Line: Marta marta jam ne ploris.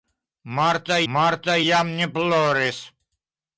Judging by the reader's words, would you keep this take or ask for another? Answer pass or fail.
pass